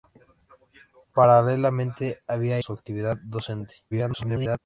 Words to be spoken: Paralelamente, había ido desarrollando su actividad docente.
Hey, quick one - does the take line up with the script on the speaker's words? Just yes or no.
no